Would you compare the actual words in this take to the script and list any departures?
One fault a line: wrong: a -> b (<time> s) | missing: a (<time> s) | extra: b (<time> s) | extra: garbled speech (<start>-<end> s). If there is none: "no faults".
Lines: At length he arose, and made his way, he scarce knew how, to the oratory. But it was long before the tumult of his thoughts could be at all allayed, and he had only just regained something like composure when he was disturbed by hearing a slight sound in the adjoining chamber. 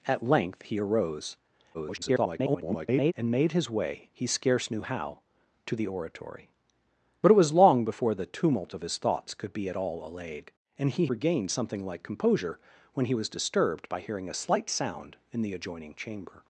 extra: garbled speech (1.7-3.1 s)
missing: had only just (11.1 s)